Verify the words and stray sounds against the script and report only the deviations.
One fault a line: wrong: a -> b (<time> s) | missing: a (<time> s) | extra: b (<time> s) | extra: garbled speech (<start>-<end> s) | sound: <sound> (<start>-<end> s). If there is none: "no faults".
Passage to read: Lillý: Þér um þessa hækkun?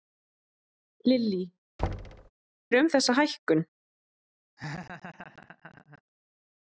sound: thud (1.8-2.3 s)
sound: laugh (4.6-6.0 s)